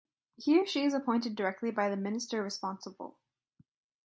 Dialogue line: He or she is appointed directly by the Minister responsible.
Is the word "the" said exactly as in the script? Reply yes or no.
yes